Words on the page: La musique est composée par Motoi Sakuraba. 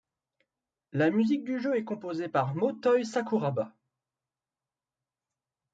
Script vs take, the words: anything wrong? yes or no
yes